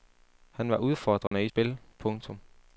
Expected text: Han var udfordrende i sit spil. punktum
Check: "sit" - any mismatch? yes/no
yes